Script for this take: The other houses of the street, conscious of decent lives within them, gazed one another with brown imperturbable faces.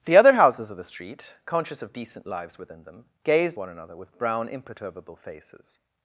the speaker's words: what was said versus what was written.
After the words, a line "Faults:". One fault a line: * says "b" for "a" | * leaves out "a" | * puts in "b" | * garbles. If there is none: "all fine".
The other houses of the street, conscious of decent lives within them, gazed one another with brown imperturbable faces.
Faults:
all fine